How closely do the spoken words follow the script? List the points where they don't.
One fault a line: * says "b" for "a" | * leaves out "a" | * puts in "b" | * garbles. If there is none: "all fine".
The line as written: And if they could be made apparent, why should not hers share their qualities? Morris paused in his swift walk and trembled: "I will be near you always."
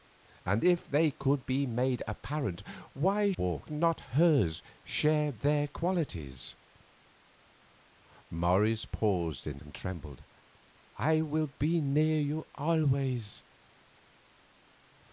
* says "walk" for "should"
* leaves out "his swift walk"